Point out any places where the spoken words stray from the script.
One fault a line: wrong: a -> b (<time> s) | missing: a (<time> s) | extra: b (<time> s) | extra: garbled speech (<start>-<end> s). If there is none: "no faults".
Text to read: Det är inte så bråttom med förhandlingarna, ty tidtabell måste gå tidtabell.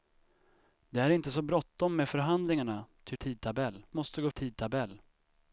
no faults